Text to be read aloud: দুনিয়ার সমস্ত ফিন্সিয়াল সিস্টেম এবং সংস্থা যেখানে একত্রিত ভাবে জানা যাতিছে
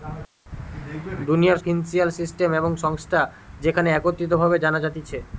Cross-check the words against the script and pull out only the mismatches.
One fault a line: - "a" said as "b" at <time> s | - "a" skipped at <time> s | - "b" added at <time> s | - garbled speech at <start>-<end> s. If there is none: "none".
- "সমস্ত" skipped at 1.6 s